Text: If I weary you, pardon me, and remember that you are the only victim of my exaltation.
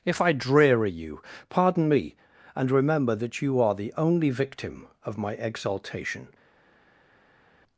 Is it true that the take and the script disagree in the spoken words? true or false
true